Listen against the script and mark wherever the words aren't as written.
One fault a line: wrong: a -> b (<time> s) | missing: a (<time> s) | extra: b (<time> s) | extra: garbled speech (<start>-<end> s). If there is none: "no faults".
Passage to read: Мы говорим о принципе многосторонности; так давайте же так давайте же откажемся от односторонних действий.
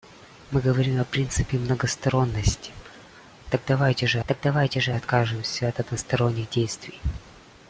no faults